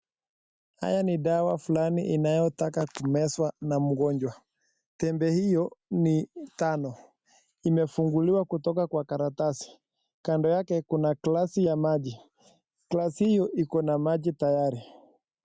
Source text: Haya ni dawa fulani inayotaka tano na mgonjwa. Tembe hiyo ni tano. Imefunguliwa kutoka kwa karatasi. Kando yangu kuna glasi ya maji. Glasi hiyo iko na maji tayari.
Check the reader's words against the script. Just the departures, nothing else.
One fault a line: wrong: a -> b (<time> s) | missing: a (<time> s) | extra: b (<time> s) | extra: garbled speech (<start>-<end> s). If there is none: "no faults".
wrong: tano -> kumezwa (3.0 s)
wrong: yangu -> yake (10.5 s)